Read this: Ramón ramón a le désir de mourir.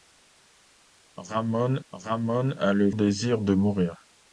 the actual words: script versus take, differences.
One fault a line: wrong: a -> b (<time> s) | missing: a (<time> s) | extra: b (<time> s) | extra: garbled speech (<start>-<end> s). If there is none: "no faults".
no faults